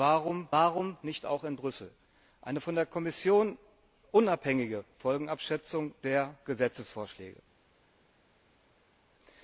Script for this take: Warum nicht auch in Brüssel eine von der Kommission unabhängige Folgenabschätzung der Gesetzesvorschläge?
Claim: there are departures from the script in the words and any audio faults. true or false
true